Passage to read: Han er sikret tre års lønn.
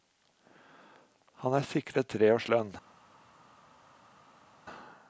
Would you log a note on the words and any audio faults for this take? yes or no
no